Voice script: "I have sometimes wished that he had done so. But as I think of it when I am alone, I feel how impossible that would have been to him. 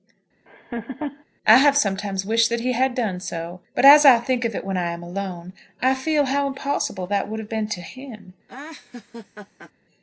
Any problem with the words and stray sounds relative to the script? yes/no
yes